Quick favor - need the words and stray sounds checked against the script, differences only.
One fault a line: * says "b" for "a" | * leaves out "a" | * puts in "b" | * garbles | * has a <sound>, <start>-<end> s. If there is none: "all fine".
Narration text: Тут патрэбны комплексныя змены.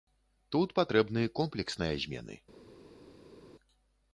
all fine